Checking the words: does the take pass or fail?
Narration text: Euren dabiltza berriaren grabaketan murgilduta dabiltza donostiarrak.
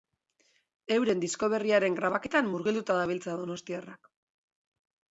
fail